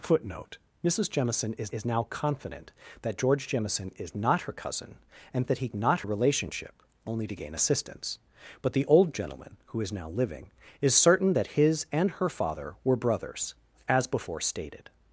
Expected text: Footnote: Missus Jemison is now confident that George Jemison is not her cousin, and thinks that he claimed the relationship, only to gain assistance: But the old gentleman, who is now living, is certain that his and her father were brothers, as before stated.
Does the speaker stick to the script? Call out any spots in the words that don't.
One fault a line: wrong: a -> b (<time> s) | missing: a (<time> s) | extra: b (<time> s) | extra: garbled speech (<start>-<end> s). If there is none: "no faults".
extra: is (1.7 s)
missing: thinks (5.5 s)
wrong: claimed -> not (5.7 s)